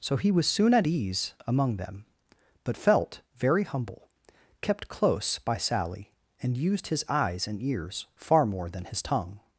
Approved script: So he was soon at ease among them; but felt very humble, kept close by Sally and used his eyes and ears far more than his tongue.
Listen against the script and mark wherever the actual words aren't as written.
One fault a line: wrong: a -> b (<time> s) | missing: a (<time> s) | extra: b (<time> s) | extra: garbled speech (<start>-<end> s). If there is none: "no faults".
no faults